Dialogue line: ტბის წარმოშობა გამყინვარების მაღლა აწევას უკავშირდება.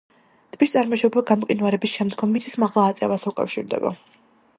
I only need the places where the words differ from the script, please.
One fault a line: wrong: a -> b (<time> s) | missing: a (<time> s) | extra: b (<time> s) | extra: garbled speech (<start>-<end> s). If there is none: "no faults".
extra: შემდგომ მიწის (2.0 s)